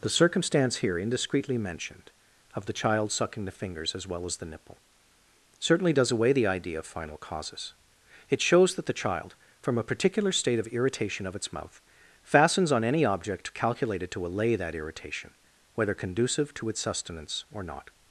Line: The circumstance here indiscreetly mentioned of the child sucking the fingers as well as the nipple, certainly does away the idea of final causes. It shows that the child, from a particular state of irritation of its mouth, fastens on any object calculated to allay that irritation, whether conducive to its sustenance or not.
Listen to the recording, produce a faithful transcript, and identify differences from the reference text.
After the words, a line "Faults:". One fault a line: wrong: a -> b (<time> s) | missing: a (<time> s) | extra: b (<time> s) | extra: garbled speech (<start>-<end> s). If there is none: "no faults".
The circumstance here indiscreetly mentioned of the child sucking the fingers as well as the nipple, certainly does away the idea of final causes. It shows that the child, from a particular state of irritation of its mouth, fastens on any object calculated to allay that irritation, whether conducive to its sustenance or not.
Faults:
no faults